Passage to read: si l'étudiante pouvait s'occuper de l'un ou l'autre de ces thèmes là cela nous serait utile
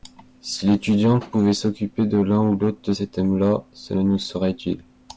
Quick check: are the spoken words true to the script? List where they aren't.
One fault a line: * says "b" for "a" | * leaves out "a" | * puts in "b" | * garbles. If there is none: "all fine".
all fine